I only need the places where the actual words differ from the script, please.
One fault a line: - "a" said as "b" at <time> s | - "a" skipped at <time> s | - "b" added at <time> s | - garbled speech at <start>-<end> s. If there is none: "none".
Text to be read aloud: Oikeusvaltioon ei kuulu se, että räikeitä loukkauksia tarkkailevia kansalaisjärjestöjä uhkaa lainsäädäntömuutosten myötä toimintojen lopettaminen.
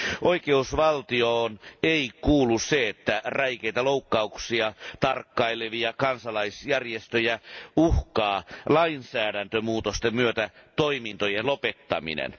none